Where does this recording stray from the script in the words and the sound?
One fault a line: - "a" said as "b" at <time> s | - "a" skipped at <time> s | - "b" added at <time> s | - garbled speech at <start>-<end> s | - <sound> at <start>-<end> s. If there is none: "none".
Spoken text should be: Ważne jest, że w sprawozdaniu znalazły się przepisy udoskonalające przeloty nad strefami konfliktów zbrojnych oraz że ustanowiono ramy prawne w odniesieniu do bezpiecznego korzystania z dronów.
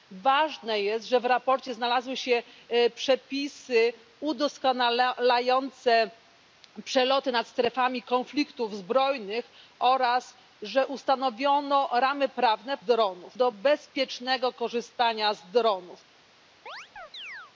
- "odniesieniu" said as "dronów" at 12.8 s
- chirp at 16.7-17.5 s